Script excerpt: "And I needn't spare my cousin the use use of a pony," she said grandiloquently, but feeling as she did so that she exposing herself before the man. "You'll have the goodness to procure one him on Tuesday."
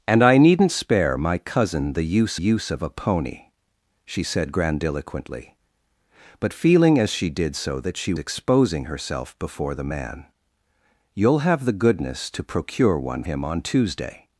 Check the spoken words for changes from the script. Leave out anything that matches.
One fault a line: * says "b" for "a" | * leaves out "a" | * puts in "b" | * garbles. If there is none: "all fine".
all fine